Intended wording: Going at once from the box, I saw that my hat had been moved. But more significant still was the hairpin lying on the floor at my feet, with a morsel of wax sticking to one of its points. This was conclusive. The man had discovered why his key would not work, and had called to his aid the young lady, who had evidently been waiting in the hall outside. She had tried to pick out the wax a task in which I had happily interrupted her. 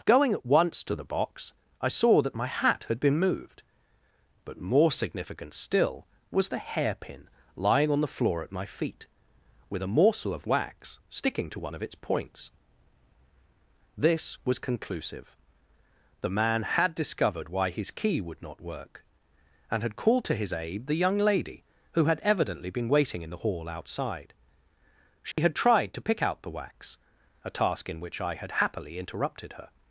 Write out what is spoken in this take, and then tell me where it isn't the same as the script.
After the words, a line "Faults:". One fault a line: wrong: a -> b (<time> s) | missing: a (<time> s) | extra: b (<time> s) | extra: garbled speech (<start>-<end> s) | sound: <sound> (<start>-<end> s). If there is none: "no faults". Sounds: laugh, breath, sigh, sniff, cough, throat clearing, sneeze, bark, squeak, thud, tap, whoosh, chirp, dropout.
Going at once to the box, I saw that my hat had been moved. But more significant still was the hairpin lying on the floor at my feet, with a morsel of wax sticking to one of its points. This was conclusive. The man had discovered why his key would not work, and had called to his aid the young lady, who had evidently been waiting in the hall outside. She had tried to pick out the wax a task in which I had happily interrupted her.
Faults:
wrong: from -> to (0.8 s)
sound: dropout (25.3-25.4 s)